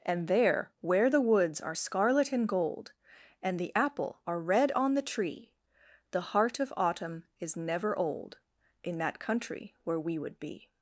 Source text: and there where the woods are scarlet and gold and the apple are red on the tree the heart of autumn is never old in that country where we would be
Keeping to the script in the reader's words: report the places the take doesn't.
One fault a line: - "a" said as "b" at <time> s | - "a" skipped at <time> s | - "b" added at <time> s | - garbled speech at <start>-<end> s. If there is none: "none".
none